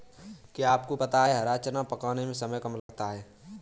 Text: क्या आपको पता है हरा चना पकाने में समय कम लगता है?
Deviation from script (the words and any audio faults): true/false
true